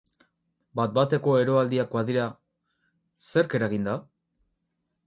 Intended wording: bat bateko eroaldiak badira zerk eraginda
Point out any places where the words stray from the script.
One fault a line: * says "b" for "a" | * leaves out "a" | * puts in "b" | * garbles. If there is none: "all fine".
all fine